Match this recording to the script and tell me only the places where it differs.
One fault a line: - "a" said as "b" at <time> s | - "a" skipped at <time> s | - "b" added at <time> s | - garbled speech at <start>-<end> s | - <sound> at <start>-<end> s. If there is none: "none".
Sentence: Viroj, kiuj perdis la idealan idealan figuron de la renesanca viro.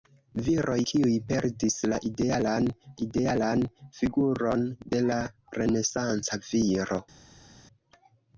none